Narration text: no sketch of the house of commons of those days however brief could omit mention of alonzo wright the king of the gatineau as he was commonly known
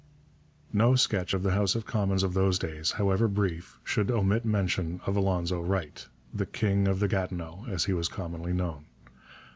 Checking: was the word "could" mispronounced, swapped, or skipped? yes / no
yes